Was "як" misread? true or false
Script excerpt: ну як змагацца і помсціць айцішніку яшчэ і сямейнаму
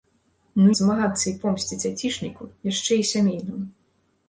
true